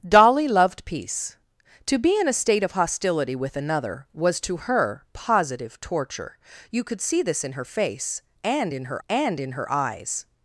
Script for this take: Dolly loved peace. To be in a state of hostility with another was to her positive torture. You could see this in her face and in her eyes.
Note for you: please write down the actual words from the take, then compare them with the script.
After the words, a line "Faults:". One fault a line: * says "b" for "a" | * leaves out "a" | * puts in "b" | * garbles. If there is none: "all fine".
Dolly loved peace. To be in a state of hostility with another was to her positive torture. You could see this in her face and in her and in her eyes.
Faults:
* puts in "and in her"